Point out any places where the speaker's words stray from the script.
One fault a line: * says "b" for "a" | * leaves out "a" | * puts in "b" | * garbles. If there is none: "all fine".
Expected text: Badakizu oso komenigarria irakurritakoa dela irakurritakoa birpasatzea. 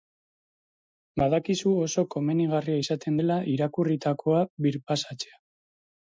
* says "izaten" for "irakurritakoa"